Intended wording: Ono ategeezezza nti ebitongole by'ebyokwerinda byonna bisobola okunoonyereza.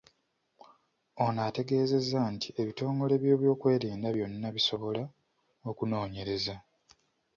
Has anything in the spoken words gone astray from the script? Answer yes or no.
no